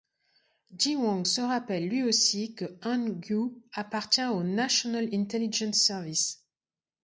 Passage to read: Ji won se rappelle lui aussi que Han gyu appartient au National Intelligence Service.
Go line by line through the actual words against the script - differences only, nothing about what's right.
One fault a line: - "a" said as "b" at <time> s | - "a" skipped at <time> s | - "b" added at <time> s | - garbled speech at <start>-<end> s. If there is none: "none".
none